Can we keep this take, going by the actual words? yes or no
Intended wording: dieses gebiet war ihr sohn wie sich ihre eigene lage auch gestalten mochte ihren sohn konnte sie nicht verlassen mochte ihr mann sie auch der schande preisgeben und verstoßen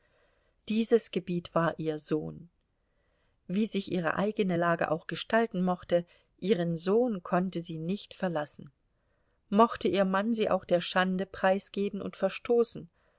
yes